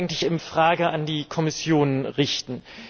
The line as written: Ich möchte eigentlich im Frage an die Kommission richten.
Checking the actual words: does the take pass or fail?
pass